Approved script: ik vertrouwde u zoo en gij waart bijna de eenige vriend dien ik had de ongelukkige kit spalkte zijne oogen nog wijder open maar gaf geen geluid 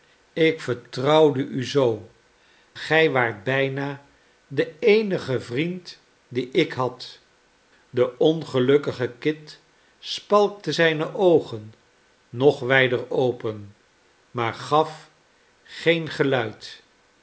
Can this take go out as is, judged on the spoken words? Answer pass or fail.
fail